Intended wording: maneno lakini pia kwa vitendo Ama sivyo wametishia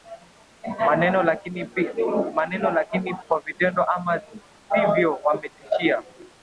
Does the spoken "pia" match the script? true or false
false